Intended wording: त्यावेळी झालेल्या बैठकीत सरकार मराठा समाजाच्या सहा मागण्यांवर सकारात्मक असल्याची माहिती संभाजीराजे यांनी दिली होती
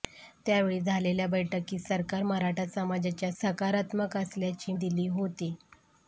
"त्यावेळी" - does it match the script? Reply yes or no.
yes